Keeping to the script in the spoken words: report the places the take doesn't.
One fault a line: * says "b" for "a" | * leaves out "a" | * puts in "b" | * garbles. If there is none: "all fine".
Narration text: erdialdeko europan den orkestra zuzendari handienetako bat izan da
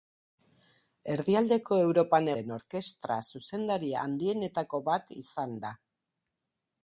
all fine